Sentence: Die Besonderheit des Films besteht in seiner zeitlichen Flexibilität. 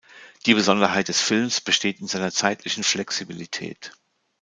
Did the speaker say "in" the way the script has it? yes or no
yes